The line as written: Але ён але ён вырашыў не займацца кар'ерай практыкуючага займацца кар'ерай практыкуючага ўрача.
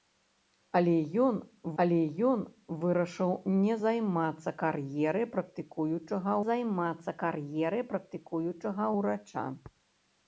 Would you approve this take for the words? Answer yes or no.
yes